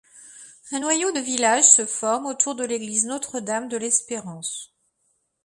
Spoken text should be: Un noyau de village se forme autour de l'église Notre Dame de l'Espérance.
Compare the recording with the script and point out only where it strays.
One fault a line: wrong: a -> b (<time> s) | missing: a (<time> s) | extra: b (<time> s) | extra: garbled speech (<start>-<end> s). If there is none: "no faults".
no faults